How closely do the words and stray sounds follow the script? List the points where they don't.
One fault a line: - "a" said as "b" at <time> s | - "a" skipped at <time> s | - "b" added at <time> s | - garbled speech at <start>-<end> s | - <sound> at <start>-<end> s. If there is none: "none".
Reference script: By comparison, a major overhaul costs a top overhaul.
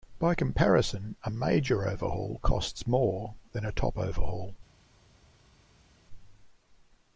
- "more than" added at 2.9 s